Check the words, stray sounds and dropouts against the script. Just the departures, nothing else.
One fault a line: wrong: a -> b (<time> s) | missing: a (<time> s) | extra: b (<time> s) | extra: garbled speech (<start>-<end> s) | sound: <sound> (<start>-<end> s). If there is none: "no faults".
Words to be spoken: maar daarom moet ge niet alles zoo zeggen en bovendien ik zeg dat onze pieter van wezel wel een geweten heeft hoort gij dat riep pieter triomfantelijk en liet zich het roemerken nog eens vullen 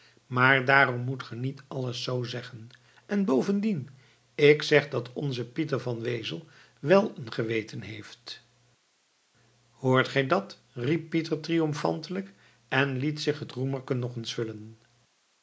no faults